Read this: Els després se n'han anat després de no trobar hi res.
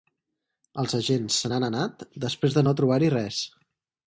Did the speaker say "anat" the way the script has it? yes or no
yes